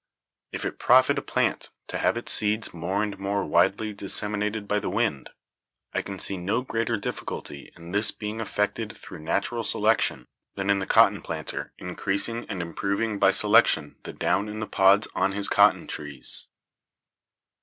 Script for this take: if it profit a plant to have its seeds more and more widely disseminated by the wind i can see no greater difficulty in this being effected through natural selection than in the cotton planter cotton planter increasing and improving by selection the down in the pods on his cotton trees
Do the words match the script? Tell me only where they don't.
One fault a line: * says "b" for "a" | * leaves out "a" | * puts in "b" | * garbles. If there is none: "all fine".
* leaves out "cotton planter"